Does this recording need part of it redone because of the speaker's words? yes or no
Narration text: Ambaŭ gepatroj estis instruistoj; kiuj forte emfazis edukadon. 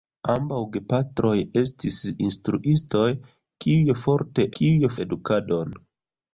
yes